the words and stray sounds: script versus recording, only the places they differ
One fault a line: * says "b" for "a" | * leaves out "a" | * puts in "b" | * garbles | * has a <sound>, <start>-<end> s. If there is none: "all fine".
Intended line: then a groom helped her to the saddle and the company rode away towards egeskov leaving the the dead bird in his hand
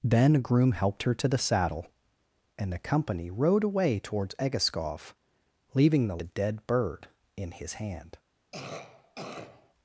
* has a cough, 8.5-9.7 s